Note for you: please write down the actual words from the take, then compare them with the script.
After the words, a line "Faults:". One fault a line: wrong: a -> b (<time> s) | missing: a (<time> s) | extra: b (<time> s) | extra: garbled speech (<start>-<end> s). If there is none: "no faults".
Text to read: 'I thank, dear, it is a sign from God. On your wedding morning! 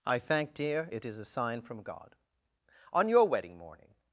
'I thank, dear, it is a sign from God. On your wedding morning!
Faults:
no faults